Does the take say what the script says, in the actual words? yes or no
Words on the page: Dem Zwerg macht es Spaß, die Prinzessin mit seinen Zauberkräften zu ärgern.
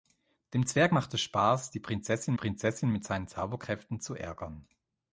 no